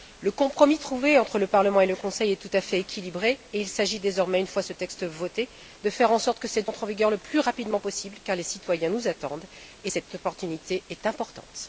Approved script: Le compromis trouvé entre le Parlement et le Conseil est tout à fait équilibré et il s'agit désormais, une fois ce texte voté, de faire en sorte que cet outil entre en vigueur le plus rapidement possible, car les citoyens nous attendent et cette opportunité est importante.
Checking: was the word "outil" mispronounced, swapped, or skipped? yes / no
yes